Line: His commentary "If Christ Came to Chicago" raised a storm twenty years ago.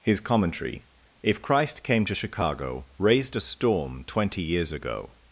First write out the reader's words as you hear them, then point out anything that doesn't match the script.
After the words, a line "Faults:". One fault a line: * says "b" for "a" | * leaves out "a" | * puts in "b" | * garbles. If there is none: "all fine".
His commentary "If Christ Came to Chicago" raised a storm twenty years ago.
Faults:
all fine